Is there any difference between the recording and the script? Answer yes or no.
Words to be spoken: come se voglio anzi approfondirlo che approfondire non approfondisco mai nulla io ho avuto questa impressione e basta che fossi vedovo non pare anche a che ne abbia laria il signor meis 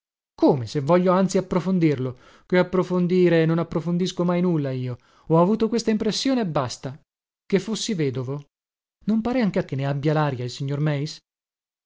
no